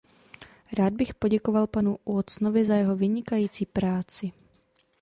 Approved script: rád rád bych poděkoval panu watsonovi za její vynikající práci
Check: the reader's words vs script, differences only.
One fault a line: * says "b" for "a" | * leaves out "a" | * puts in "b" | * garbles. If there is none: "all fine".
* leaves out "rád"
* says "jeho" for "její"